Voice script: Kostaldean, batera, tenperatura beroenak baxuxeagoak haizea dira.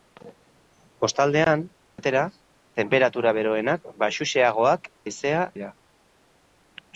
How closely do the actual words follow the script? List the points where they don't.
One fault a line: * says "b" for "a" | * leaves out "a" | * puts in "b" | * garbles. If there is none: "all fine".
all fine